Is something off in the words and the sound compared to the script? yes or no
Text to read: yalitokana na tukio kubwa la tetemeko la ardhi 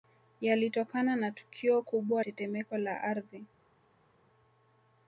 yes